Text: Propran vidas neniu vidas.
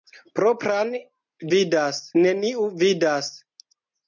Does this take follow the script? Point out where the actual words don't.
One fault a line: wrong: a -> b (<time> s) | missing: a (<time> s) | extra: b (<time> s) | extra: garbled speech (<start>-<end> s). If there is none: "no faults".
no faults